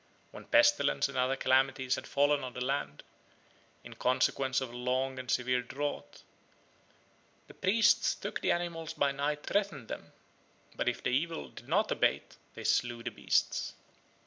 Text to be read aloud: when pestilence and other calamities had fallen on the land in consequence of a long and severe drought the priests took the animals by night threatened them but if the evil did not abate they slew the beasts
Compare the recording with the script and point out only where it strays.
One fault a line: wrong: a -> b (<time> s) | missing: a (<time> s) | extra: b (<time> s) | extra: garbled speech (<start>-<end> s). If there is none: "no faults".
no faults